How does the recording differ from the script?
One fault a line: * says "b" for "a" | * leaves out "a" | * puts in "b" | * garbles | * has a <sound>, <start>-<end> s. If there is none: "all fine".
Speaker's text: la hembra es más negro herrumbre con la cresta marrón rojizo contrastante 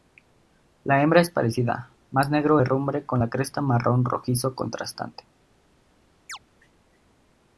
* puts in "parecida"
* has a chirp, 6.3-6.4 s